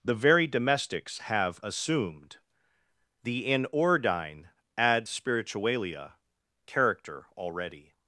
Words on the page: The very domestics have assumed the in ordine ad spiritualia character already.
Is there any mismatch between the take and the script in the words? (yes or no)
no